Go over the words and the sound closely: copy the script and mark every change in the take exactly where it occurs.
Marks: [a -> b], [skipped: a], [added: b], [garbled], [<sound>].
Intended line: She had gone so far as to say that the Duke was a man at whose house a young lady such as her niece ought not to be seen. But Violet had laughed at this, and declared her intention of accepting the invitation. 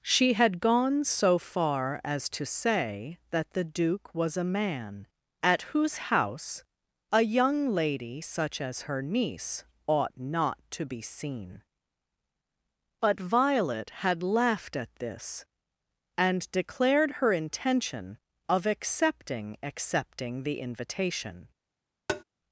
She had gone so far as to say that the Duke was a man at whose house a young lady such as her niece ought not to be seen. But Violet had laughed at this, and declared her intention of accepting [added: accepting] the invitation. [tap]